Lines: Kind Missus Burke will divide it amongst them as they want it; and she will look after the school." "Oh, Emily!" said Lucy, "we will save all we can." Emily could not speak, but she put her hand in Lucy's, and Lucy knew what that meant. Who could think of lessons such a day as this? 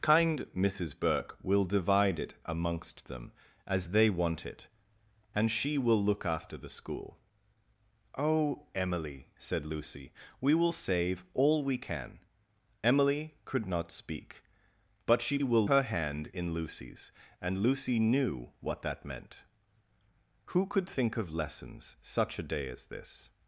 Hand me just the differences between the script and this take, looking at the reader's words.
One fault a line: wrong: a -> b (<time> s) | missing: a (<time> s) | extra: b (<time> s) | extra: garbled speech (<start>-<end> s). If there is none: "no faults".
wrong: put -> will (15.4 s)